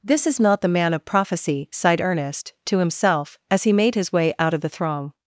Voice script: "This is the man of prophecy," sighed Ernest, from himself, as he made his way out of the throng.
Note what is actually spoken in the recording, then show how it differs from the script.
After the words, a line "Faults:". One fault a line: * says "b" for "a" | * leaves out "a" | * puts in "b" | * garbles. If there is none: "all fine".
"This is not the man of prophecy," sighed Ernest, to himself, as he made his way out of the throng.
Faults:
* puts in "not"
* says "to" for "from"